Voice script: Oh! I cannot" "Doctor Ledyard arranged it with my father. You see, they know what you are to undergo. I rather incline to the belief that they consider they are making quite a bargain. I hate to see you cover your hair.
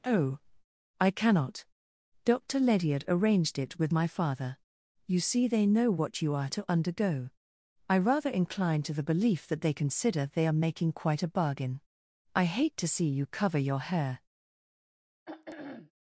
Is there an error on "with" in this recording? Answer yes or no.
no